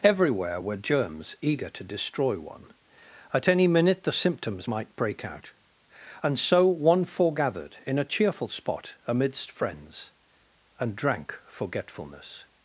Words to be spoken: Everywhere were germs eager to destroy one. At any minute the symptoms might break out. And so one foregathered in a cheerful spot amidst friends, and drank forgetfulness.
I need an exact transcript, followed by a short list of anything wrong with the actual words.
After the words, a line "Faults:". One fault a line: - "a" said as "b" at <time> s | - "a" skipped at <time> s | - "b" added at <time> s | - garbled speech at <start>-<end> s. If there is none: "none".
Everywhere were germs eager to destroy one. At any minute the symptoms might break out. And so one foregathered in a cheerful spot amidst friends, and drank forgetfulness.
Faults:
none